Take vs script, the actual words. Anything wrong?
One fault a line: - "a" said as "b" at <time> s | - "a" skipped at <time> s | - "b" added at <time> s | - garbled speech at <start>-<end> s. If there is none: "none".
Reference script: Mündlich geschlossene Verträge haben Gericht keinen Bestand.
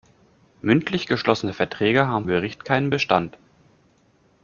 none